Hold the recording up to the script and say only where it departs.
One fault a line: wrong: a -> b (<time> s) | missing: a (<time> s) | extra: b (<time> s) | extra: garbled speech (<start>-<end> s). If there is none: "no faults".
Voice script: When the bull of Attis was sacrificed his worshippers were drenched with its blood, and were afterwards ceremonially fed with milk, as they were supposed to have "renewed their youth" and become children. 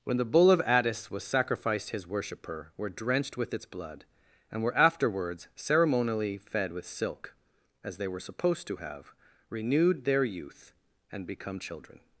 wrong: worshippers -> worshipper (2.0 s)
wrong: milk -> silk (6.8 s)